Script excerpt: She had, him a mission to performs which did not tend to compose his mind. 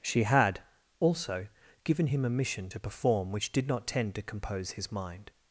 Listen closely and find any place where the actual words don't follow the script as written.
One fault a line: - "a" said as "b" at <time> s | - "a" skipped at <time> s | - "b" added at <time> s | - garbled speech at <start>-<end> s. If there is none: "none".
- "also given" added at 1.0 s
- "performs" said as "perform" at 2.8 s